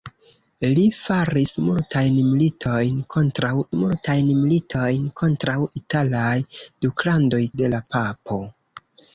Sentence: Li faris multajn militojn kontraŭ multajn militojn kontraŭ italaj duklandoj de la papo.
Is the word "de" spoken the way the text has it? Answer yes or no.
yes